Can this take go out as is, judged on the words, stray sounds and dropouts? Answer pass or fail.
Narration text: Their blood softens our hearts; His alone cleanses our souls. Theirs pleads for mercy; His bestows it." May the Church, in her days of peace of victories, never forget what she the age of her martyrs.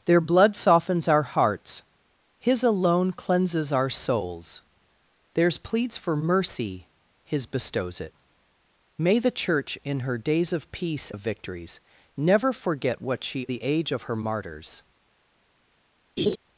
fail